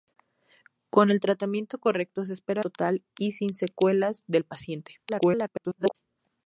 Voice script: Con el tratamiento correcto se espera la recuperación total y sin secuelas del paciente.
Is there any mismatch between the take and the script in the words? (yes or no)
yes